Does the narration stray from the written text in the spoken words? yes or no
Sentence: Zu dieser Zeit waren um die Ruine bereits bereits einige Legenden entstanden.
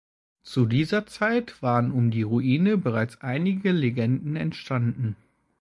yes